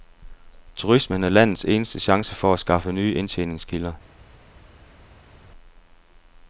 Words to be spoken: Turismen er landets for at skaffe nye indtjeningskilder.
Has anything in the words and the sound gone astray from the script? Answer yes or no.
yes